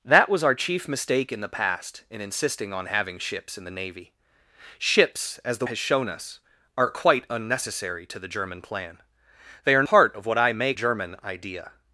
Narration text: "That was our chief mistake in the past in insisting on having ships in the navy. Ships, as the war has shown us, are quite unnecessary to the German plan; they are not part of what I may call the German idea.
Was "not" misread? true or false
true